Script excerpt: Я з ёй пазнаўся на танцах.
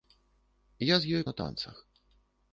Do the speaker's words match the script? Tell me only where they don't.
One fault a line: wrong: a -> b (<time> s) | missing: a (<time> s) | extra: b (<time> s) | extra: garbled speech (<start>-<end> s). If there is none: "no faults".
missing: пазнаўся (1.2 s)